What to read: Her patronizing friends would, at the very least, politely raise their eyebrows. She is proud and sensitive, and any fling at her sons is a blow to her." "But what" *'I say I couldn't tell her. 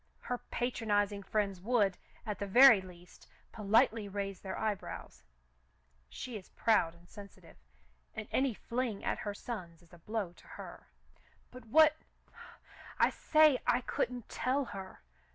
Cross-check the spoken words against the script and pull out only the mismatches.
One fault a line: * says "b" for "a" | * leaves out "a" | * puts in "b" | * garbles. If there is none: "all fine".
all fine